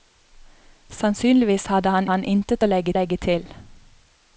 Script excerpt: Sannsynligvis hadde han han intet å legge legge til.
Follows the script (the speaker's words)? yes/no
yes